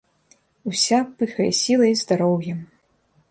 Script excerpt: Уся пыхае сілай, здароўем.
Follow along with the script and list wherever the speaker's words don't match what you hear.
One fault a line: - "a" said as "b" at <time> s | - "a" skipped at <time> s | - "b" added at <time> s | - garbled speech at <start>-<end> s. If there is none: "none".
none